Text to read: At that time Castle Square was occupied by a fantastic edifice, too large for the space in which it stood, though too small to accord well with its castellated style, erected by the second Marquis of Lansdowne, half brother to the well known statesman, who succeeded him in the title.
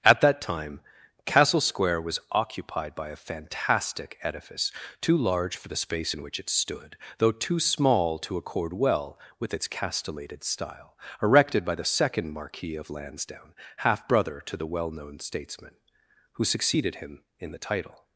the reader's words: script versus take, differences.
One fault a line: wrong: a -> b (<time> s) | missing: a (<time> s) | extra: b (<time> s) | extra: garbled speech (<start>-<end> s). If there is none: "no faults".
no faults